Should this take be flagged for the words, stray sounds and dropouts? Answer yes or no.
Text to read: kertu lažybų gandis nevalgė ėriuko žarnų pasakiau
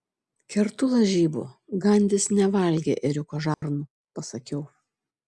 yes